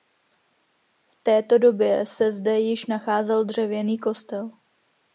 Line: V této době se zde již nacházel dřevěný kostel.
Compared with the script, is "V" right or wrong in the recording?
right